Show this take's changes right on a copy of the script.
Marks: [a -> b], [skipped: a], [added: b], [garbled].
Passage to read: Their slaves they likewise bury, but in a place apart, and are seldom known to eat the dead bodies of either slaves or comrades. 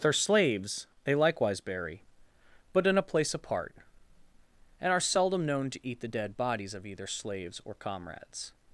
Their slaves they likewise bury, but in a place apart, and are seldom known to eat the dead bodies of either slaves or comrades.